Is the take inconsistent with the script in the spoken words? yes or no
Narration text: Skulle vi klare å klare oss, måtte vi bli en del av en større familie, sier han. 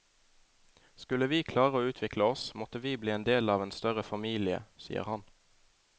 yes